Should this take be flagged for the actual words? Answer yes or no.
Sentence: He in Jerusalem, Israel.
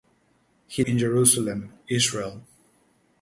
no